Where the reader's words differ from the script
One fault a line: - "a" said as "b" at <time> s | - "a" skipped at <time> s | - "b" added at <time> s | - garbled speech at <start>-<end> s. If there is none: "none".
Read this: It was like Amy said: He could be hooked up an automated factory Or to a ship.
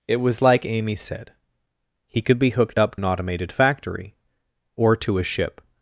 none